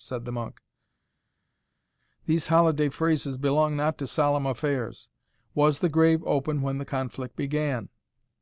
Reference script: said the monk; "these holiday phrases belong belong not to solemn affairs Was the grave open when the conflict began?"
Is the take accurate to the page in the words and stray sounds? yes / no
no